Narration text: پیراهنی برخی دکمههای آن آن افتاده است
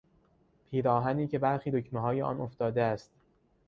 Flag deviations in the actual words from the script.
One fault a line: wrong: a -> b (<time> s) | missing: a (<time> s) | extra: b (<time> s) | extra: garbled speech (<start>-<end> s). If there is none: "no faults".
extra: که (1.3 s)
missing: آن (2.4 s)